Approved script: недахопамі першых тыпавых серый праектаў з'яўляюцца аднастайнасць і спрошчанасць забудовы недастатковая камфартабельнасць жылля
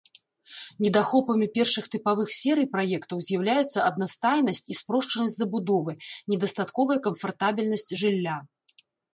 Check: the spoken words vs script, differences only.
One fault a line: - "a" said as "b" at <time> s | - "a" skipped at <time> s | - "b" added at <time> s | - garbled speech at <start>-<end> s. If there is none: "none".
none